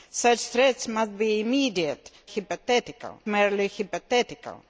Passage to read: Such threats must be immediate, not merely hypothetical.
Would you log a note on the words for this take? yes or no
yes